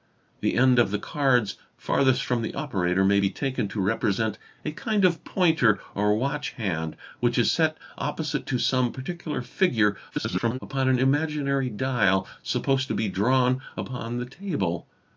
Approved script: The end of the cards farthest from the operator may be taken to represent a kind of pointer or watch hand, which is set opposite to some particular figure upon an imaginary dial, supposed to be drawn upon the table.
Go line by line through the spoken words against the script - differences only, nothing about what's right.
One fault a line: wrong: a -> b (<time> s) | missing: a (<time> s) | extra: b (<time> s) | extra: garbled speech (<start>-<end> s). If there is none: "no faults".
extra: garbled speech (10.1-10.6 s)